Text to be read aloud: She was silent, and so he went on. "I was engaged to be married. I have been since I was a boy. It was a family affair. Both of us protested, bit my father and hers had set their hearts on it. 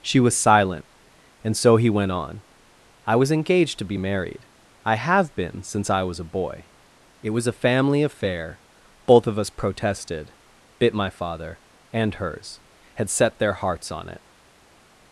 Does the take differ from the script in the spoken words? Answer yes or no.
no